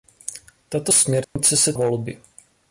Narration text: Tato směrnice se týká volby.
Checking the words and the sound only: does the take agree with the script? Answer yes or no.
no